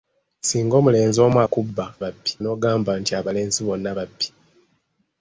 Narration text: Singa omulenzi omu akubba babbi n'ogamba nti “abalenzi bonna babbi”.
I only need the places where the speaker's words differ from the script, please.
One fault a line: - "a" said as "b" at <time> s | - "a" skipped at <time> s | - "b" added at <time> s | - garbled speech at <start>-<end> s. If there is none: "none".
none